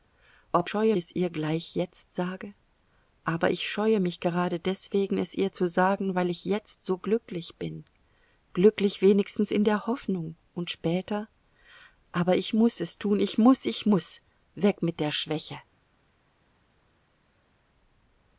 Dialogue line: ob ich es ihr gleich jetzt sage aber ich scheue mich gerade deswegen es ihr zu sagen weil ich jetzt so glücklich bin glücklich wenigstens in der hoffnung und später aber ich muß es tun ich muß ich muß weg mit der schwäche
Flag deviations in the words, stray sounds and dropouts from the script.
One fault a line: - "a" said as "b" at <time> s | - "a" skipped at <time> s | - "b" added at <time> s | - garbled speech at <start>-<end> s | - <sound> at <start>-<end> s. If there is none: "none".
- "ich" said as "scheue" at 0.6 s